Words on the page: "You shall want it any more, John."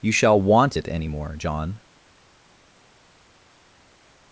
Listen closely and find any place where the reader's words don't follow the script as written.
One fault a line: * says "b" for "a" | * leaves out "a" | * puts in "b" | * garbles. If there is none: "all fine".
all fine